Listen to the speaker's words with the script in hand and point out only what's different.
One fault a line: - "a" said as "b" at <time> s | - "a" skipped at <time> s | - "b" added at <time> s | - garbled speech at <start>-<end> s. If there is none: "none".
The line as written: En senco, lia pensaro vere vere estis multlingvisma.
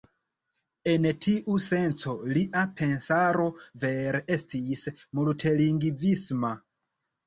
- "tiu" added at 1.2 s
- "vere" skipped at 4.2 s